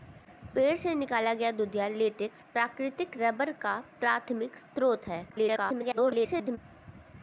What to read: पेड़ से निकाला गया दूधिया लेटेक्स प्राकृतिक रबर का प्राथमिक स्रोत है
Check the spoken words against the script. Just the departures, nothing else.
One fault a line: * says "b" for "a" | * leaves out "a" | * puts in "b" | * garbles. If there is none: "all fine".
* garbles